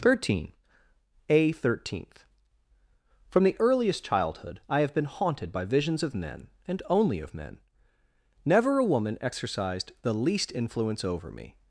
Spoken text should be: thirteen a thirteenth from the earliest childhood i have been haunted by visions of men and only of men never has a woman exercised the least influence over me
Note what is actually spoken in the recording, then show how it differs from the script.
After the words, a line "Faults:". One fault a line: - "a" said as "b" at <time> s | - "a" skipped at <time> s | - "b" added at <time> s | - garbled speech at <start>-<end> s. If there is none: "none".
thirteen a thirteenth from the earliest childhood i have been haunted by visions of men and only of men never a woman exercised the least influence over me
Faults:
- "has" skipped at 8.8 s